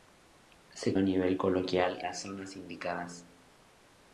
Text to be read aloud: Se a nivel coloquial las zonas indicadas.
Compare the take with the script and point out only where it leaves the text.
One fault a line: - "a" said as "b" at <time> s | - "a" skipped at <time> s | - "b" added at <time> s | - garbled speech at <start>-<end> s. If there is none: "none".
none